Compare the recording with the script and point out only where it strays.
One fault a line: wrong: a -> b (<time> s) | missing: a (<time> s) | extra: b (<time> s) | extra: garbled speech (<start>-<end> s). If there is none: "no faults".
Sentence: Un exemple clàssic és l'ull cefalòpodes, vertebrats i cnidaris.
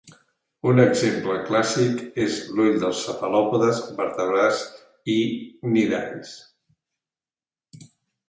extra: dels (2.8 s)